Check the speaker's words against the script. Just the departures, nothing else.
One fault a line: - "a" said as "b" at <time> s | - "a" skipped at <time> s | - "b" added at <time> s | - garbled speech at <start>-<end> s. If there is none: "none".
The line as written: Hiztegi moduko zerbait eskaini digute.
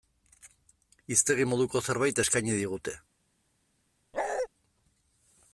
none